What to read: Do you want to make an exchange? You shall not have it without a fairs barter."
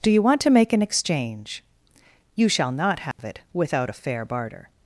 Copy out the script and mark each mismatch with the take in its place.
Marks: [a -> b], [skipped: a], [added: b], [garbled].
Do you want to make an exchange? You shall not have it without a [fairs -> fair] barter."